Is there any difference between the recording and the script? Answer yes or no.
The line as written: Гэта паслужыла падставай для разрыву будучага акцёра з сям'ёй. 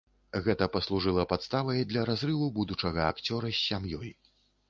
no